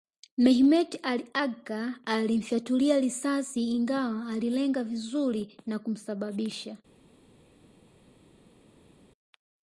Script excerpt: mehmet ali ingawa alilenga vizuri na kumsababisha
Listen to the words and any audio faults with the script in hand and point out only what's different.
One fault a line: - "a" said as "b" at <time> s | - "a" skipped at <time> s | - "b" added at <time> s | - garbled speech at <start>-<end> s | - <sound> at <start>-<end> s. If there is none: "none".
- "agca alimfyatulia risasi" added at 1.3 s